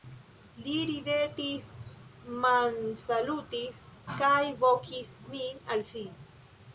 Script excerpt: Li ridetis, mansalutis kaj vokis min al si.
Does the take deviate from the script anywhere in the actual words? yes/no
no